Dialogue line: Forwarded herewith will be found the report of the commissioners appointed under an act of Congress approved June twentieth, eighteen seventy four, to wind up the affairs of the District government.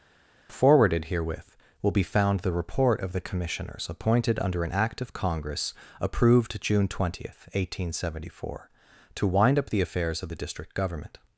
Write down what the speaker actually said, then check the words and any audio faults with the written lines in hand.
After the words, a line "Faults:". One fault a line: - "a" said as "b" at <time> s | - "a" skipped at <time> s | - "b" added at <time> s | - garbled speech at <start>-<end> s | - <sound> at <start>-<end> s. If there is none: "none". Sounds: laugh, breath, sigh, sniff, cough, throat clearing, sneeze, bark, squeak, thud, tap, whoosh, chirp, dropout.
Forwarded herewith will be found the report of the commissioners appointed under an act of Congress approved June twentieth, eighteen seventy four, to wind up the affairs of the District government.
Faults:
none